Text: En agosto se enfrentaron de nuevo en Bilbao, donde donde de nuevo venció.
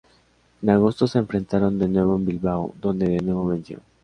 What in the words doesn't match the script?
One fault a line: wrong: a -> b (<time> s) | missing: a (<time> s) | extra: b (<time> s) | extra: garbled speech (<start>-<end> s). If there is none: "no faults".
missing: donde (3.1 s)